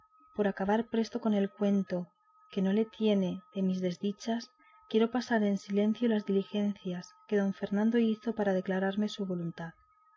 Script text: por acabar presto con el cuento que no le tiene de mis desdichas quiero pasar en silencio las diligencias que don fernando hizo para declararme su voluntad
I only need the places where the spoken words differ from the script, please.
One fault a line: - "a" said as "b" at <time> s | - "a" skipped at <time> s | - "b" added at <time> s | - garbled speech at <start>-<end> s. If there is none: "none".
none